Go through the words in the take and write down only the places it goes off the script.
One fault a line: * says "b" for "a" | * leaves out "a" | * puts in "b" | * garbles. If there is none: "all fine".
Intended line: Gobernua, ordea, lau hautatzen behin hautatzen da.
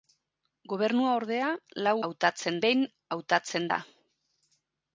all fine